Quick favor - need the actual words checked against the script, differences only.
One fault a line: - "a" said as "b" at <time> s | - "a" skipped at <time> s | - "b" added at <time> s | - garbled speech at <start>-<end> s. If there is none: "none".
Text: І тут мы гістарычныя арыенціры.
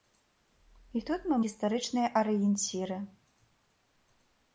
none